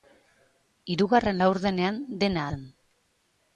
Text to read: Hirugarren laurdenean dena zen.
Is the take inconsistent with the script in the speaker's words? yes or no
no